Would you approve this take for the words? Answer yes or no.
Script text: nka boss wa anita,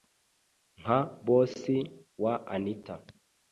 yes